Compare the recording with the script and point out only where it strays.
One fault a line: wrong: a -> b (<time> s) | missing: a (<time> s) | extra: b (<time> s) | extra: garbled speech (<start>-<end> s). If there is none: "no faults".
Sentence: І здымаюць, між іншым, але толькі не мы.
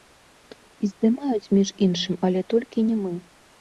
no faults